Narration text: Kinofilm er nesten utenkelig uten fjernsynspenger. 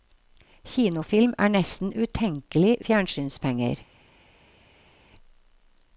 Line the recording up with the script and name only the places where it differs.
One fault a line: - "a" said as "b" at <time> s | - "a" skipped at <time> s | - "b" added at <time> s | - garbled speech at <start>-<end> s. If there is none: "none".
- "uten" skipped at 2.8 s